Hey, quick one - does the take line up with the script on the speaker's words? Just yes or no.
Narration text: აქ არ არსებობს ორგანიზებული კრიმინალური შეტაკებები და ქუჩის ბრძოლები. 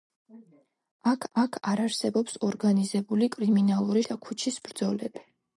no